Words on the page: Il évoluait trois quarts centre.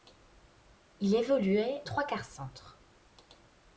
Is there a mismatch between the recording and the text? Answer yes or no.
no